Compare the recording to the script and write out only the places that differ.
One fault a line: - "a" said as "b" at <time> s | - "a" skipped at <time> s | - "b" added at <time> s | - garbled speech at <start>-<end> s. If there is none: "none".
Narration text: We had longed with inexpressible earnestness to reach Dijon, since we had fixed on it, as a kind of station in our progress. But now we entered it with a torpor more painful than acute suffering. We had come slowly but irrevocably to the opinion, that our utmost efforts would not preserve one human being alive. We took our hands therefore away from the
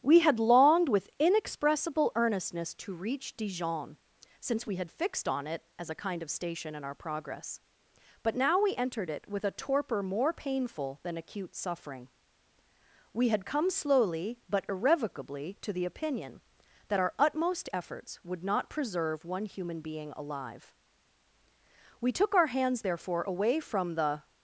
none